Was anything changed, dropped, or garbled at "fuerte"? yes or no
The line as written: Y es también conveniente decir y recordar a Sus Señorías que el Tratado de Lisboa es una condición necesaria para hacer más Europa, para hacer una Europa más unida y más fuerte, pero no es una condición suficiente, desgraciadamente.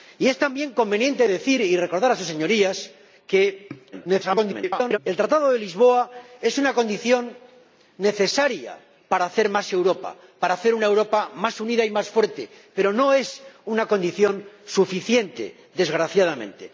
no